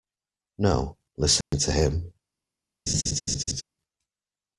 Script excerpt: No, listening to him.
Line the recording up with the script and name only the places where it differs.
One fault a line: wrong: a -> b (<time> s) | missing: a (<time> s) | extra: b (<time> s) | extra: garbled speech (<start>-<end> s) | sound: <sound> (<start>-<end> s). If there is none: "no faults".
sound: dropout (1.4-1.5 s)
sound: laugh (2.9-3.6 s)